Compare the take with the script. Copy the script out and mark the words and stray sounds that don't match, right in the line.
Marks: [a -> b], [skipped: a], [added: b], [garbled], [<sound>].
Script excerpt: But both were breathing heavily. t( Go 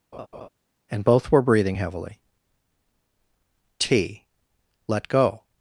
[laugh] [But -> And] both were breathing heavily. t( [added: Let] Go